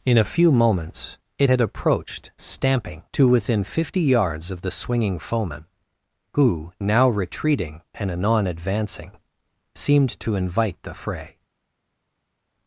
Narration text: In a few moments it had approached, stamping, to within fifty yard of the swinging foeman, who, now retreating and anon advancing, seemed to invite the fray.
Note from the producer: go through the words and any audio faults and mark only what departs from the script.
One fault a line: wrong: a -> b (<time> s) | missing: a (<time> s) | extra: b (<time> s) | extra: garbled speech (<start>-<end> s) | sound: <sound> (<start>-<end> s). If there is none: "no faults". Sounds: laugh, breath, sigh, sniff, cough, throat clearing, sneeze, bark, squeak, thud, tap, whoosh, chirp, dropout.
wrong: yard -> yards (4.0 s)